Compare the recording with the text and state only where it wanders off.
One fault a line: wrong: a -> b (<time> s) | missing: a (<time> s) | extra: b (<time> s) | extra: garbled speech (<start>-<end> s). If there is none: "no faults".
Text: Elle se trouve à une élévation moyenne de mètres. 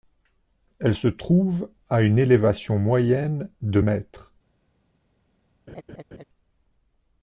no faults